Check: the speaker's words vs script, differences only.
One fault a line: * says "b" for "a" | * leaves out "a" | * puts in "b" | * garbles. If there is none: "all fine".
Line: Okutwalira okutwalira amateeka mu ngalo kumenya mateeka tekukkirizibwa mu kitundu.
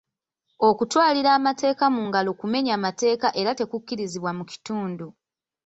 * leaves out "okutwalira"
* puts in "era"